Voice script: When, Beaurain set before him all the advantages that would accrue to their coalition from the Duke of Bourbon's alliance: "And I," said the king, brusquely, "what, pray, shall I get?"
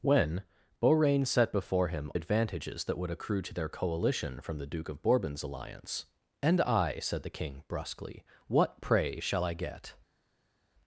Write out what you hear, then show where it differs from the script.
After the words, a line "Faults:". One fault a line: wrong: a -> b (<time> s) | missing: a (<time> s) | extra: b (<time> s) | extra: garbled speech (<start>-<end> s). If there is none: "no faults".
When, Beaurain set before him advantages that would accrue to their coalition from the Duke of Bourbon's alliance: "And I," said the king, brusquely, "what, pray, shall I get?"
Faults:
missing: all the (2.1 s)